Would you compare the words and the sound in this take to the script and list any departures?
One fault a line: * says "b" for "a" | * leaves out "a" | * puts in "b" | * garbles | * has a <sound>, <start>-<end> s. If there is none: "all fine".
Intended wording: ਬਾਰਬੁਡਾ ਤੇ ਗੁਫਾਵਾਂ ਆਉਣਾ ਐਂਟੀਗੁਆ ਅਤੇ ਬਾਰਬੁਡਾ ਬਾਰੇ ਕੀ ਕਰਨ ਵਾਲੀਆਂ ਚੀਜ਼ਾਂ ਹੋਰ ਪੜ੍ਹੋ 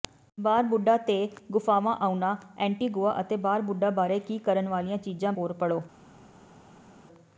all fine